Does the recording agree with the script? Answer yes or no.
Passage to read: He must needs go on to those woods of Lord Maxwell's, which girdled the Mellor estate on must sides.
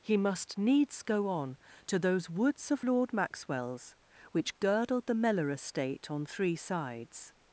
no